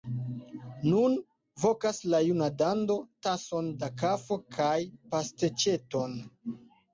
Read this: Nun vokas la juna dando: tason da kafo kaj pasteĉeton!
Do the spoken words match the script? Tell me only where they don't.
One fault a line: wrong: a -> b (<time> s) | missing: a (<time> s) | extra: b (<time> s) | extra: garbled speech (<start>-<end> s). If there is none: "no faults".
no faults